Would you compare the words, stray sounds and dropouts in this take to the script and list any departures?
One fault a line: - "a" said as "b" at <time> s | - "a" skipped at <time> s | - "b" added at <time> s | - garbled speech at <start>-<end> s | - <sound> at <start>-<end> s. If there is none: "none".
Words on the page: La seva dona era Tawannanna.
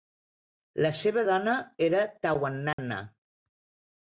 - dropout at 2.7-2.8 s